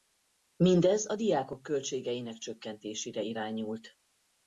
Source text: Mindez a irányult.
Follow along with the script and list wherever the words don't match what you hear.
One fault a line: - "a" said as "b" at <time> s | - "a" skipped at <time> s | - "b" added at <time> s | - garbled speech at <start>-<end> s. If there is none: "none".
- "diákok költségeinek csökkentésére" added at 1.1 s